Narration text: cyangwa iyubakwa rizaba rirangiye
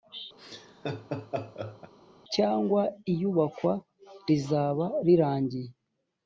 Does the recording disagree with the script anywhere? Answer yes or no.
no